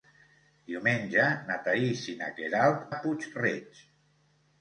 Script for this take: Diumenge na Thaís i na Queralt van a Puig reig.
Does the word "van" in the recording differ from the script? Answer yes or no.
yes